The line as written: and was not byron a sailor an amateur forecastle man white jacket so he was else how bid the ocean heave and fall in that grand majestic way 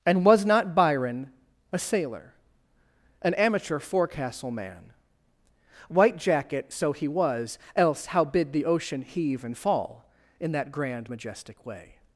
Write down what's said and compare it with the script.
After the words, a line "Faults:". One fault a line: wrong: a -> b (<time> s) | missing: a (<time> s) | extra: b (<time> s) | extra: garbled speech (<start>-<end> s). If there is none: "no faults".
and was not byron a sailor an amateur forecastle man white jacket so he was else how bid the ocean heave and fall in that grand majestic way
Faults:
no faults